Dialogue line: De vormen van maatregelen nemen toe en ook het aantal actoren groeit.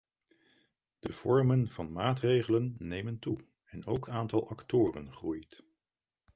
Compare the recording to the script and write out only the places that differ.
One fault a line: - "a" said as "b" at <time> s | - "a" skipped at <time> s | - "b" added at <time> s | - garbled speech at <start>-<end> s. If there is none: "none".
- "het" skipped at 4.1 s